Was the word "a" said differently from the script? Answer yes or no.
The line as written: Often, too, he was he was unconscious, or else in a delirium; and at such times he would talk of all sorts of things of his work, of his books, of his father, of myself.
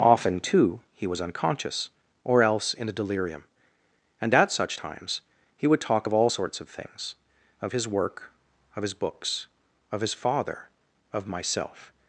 no